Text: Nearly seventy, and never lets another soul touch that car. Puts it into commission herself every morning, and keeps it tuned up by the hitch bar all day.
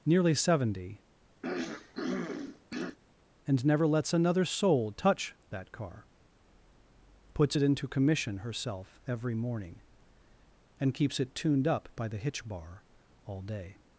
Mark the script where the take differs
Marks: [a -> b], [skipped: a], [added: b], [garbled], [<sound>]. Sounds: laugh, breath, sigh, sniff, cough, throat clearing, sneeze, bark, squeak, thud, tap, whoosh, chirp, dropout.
Nearly seventy, [throat clearing] and never lets another soul touch that car. Puts it into commission herself every morning, and keeps it tuned up by the hitch bar all day.